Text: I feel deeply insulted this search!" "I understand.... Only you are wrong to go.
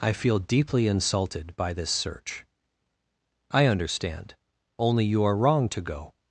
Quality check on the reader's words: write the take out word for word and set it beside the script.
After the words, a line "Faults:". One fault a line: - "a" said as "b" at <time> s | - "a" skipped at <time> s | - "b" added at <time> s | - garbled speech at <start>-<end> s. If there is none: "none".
I feel deeply insulted by this search!" "I understand.... Only you are wrong to go.
Faults:
- "by" added at 1.6 s